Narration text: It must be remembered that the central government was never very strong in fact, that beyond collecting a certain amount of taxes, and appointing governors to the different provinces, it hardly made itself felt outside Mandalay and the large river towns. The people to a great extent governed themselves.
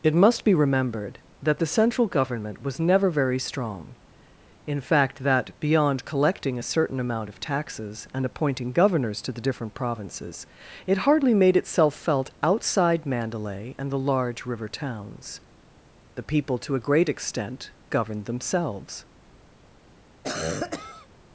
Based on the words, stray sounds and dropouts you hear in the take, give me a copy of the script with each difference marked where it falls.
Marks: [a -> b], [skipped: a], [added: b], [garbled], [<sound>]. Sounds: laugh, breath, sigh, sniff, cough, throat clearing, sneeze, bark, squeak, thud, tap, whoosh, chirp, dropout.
It must be remembered that the central government was never very strong in fact, that beyond collecting a certain amount of taxes, and appointing governors to the different provinces, it hardly made itself felt outside Mandalay and the large river towns. The people to a great extent governed themselves. [cough]